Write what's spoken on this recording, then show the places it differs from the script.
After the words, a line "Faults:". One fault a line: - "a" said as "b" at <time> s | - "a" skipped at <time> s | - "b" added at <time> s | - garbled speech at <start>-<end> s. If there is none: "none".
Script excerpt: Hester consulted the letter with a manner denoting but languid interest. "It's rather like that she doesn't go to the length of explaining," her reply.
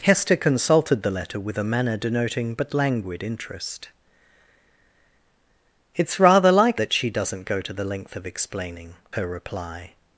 Hester consulted the letter with a manner denoting but languid interest. "It's rather like that she doesn't go to the length of explaining," her reply.
Faults:
none